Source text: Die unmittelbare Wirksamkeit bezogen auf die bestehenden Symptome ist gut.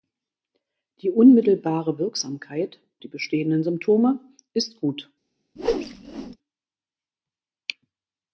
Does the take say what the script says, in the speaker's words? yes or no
no